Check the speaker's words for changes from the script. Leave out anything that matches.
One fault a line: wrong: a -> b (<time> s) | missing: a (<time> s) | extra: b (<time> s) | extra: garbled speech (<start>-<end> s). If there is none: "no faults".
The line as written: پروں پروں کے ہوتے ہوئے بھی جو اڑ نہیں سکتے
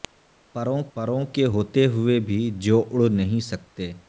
no faults